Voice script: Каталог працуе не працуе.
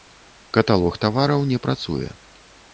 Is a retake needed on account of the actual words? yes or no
yes